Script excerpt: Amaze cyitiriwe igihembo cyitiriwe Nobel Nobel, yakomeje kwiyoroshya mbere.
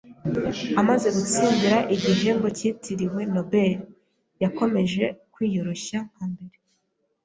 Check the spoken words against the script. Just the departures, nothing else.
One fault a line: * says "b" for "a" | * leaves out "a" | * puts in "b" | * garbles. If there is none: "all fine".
* says "gutsindira" for "cyitiriwe"
* leaves out "Nobel"
* puts in "nka"